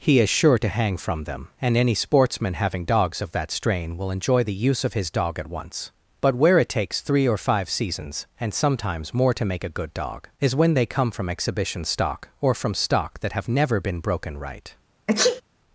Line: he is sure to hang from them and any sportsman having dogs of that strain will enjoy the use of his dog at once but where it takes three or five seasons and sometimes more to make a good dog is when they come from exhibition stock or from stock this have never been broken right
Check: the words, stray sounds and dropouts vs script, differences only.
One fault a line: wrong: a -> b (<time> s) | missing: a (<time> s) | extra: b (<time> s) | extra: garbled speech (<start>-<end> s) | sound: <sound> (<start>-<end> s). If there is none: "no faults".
wrong: this -> that (13.2 s)
sound: sneeze (15.1-15.4 s)